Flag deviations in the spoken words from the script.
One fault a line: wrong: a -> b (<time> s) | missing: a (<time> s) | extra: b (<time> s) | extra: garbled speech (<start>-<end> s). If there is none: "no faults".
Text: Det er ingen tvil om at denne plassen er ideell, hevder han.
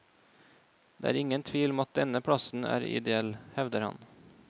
no faults